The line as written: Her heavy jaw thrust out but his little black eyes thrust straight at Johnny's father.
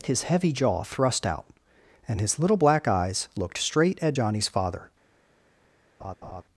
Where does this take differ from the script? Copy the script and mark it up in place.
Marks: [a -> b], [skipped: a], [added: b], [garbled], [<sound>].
[Her -> His] heavy jaw thrust out [but -> and] his little black eyes [thrust -> looked] straight at Johnny's father. [laugh]